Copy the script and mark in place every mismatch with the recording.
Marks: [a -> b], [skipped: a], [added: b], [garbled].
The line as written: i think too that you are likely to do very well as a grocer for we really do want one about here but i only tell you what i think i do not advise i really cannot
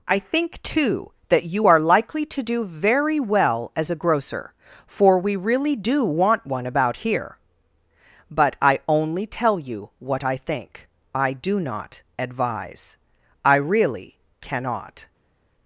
i think too that you are likely to do very well as a grocer for we really do want one about here but i only tell you what i think i do not advise i really cannot